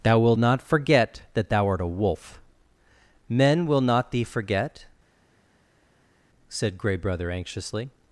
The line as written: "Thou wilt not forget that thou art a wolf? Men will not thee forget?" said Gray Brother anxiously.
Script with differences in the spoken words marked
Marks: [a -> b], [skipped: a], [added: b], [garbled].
"Thou wilt not forget that thou art a wolf? Men will not thee forget?" said Gray Brother anxiously.